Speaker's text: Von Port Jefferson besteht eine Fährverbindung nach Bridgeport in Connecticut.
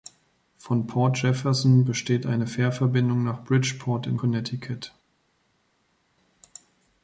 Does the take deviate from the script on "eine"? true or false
false